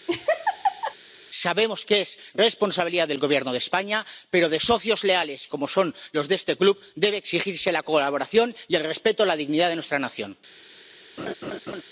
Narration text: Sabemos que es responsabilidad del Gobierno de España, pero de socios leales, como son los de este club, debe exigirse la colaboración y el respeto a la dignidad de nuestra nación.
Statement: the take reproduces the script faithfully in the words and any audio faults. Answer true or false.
false